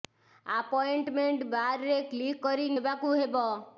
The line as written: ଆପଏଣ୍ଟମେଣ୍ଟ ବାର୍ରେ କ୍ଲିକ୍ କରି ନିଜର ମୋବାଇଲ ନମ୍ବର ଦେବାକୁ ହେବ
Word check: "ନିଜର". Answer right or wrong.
wrong